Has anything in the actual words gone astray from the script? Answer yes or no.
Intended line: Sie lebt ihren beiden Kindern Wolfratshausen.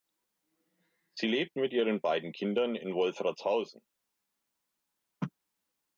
yes